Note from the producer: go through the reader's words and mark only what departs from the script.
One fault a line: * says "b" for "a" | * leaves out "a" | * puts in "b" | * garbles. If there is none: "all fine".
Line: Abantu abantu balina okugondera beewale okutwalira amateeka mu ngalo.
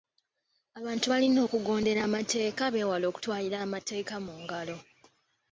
* leaves out "abantu"
* puts in "amateeka"